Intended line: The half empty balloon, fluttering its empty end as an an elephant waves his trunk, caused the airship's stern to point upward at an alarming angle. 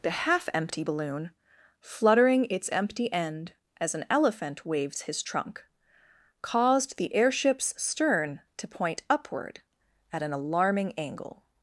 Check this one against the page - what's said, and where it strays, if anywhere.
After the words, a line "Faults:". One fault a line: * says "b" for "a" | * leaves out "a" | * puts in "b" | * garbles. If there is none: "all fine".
The half empty balloon, fluttering its empty end as an elephant waves his trunk, caused the airship's stern to point upward at an alarming angle.
Faults:
* leaves out "an"